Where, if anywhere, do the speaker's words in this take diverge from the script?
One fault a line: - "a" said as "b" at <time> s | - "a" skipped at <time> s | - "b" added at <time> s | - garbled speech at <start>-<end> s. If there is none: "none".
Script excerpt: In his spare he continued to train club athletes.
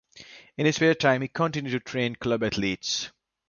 - "time" added at 0.9 s